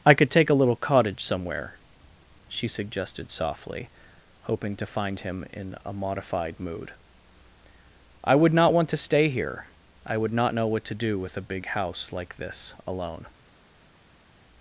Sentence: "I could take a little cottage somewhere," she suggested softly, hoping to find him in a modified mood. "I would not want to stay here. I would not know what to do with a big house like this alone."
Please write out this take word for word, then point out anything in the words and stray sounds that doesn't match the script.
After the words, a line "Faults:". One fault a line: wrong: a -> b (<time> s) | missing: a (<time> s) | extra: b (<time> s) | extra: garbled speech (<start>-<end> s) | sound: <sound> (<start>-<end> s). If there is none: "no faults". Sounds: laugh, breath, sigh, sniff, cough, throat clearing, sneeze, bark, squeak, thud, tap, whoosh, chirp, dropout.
"I could take a little cottage somewhere," she suggested softly, hoping to find him in a modified mood. "I would not want to stay here. I would not know what to do with a big house like this alone."
Faults:
no faults